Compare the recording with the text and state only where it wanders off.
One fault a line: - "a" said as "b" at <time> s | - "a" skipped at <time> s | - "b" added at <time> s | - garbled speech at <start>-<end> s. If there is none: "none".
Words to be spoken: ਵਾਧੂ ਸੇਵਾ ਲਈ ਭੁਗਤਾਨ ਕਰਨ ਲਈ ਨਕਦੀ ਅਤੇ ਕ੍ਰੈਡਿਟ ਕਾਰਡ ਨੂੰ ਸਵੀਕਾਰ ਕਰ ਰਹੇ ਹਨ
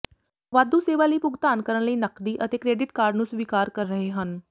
none